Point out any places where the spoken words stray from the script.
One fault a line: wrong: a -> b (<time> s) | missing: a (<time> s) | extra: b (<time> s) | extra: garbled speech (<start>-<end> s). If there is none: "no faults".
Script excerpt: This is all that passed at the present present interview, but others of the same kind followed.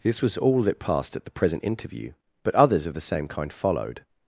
wrong: is -> was (0.2 s)
missing: present (1.6 s)